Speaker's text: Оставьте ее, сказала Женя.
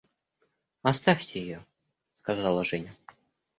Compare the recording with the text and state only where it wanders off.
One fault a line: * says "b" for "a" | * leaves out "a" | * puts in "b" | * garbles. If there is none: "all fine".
all fine